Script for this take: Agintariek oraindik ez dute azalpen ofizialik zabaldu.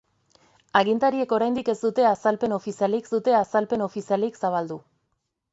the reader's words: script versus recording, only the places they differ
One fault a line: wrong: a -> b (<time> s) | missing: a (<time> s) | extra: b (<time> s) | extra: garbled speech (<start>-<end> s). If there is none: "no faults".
extra: dute azalpen ofizialik (3.1 s)